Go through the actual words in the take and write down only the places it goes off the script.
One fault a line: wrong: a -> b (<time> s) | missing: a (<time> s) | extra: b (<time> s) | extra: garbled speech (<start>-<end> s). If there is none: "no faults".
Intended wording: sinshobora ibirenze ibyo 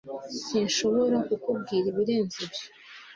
extra: kukubwira (1.3 s)